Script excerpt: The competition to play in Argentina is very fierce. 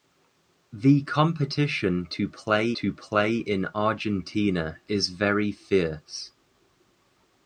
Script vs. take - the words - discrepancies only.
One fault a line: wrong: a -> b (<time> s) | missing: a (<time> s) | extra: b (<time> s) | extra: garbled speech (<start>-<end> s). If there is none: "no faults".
extra: to play (2.7 s)